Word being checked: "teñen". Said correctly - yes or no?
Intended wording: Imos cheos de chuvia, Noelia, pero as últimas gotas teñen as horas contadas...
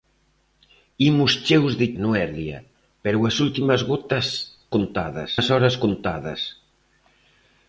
no